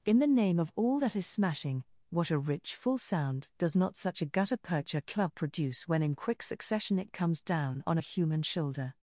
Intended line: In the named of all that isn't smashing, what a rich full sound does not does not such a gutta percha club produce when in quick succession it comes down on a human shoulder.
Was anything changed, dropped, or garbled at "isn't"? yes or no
yes